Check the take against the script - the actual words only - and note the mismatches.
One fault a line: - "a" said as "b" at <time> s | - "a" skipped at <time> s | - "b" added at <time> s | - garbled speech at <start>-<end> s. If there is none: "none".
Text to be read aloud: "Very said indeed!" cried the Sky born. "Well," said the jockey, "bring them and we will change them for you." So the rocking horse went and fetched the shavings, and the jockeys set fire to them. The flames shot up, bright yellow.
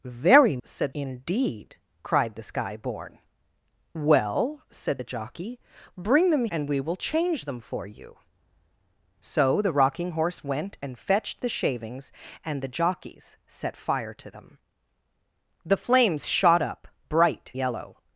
none